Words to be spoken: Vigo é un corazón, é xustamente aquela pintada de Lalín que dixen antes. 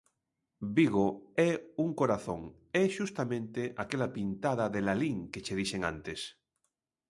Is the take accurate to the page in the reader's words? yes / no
no